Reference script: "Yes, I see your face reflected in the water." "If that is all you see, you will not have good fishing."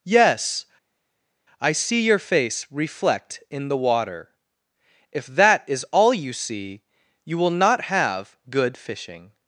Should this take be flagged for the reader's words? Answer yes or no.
yes